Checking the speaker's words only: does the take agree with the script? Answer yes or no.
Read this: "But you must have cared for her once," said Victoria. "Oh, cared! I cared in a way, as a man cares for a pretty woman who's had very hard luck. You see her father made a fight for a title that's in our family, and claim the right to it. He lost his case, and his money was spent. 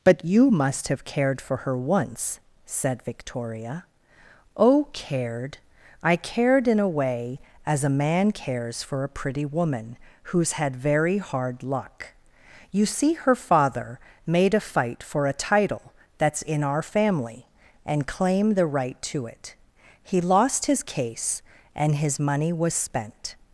yes